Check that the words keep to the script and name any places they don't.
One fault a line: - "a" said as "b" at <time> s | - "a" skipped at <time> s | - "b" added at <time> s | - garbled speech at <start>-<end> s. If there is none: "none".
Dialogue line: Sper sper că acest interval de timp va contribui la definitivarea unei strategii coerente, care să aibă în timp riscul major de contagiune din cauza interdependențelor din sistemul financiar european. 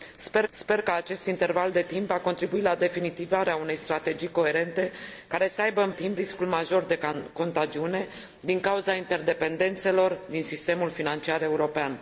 none